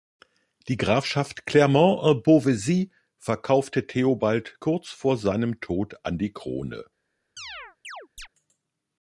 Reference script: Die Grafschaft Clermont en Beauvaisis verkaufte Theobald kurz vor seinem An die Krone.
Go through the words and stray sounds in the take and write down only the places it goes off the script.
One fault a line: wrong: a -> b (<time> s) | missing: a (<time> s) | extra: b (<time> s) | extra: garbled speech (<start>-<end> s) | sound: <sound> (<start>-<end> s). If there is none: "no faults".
extra: Tod (5.6 s)
sound: chirp (7.4-8.3 s)